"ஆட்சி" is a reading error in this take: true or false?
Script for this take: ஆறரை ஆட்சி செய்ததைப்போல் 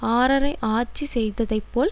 false